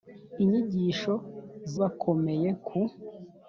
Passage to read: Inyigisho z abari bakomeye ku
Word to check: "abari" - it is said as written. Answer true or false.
false